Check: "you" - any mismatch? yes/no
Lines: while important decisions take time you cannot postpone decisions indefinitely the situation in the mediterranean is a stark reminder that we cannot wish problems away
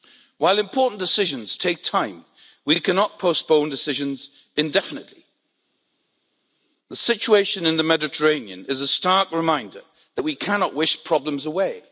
yes